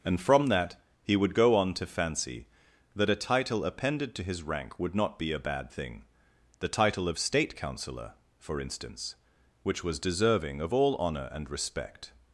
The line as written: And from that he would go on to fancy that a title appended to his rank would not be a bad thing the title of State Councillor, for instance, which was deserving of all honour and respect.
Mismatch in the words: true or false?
false